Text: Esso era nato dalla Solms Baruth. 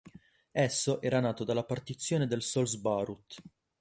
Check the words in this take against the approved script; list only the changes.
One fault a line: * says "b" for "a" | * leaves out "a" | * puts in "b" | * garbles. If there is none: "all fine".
* puts in "partizione del"